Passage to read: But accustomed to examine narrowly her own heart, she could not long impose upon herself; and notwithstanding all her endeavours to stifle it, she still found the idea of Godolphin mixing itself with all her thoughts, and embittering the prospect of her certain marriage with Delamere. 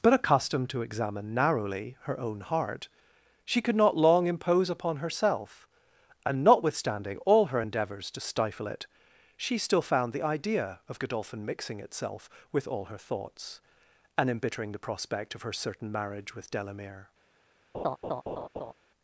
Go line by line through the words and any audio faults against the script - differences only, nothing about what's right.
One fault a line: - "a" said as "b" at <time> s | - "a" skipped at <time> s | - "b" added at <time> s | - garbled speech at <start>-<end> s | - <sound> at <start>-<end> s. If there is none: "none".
- laugh at 17.7-18.7 s